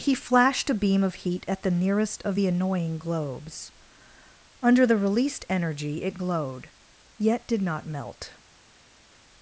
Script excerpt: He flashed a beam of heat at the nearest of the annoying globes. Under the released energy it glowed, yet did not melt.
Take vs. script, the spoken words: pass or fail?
pass